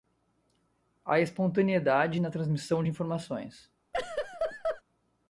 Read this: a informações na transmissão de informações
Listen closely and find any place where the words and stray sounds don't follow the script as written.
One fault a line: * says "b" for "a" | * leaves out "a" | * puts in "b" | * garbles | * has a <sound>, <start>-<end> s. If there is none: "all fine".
* says "espontaneidade" for "informações"
* has a laugh, 3.9-4.8 s